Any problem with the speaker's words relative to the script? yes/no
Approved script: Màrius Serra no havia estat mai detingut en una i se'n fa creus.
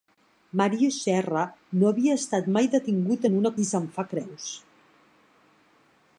no